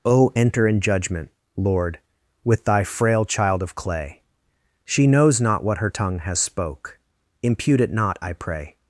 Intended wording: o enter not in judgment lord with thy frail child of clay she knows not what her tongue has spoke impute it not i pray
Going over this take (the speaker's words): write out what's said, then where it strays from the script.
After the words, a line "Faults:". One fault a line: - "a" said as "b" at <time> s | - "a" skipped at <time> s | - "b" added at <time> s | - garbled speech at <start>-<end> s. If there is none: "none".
o enter in judgment lord with thy frail child of clay she knows not what her tongue has spoke impute it not i pray
Faults:
- "not" skipped at 0.7 s